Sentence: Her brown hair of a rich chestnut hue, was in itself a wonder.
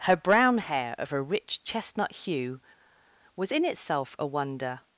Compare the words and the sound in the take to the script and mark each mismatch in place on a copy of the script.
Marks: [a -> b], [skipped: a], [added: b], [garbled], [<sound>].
Her brown hair of a rich chestnut hue, was in itself a wonder.